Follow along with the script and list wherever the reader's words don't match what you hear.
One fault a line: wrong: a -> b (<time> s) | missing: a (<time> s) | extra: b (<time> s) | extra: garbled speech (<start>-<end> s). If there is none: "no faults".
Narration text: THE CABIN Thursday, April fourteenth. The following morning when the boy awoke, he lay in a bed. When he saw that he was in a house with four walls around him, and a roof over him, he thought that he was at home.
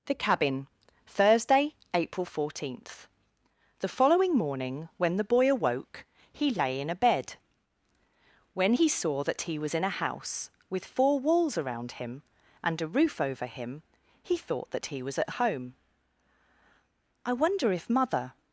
extra: I wonder if mother (17.2 s)